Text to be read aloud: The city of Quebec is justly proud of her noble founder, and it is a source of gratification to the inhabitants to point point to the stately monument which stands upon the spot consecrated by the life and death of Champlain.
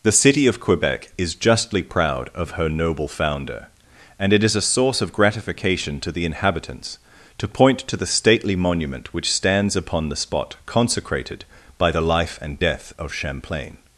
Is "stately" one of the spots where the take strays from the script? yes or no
no